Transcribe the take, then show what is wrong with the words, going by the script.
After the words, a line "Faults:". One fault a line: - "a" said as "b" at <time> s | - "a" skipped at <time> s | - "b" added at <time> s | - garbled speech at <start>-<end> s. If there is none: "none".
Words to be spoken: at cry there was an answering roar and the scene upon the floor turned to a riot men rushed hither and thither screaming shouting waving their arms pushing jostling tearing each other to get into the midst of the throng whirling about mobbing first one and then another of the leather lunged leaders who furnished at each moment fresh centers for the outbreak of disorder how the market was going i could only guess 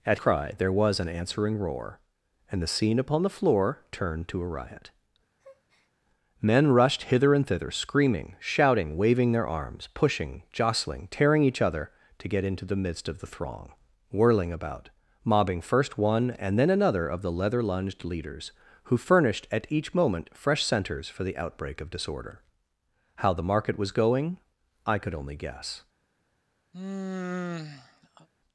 at cry there was an answering roar and the scene upon the floor turned to a riot men rushed hither and thither screaming shouting waving their arms pushing jostling tearing each other to get into the midst of the throng whirling about mobbing first one and then another of the leather lunged leaders who furnished at each moment fresh centers for the outbreak of disorder how the market was going i could only guess
Faults:
none